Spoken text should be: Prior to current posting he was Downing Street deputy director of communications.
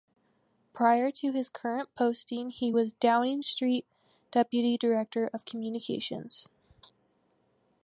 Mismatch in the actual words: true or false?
true